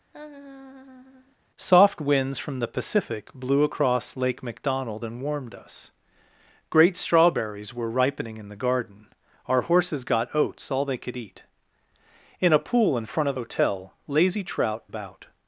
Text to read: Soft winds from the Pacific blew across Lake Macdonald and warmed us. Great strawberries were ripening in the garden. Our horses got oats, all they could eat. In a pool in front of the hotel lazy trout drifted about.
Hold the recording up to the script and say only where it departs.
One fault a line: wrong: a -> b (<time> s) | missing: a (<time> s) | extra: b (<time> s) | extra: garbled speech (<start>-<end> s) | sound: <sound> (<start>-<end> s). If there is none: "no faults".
sound: laugh (0.1-1.4 s)
missing: the (13.4 s)
missing: drifted (14.8 s)